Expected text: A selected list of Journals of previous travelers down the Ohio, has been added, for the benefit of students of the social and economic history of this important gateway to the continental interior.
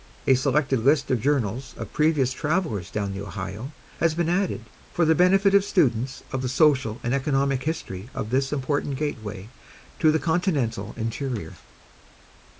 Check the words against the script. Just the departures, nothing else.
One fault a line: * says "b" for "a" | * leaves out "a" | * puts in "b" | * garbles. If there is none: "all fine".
all fine